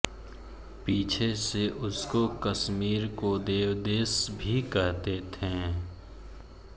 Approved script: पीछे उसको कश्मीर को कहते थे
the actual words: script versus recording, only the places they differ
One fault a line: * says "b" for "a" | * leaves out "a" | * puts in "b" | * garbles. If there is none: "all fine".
* puts in "से"
* puts in "देवदेश भी"